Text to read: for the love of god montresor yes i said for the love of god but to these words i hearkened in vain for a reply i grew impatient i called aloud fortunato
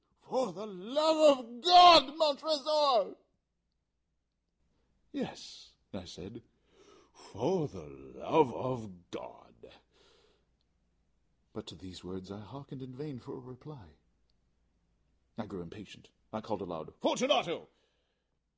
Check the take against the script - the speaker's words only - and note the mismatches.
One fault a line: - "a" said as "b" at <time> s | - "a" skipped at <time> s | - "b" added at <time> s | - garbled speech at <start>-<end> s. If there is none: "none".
none